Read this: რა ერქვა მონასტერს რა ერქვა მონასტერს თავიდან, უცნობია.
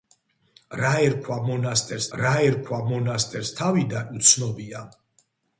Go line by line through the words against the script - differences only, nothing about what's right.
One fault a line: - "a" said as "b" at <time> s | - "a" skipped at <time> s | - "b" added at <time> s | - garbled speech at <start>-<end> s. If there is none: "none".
none